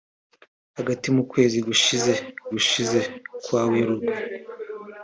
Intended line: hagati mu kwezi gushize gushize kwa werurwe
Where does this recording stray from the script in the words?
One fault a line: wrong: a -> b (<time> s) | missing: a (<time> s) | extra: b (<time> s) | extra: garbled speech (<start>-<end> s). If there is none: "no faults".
no faults